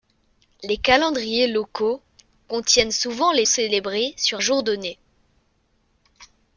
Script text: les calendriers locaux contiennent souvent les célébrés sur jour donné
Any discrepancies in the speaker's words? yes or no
no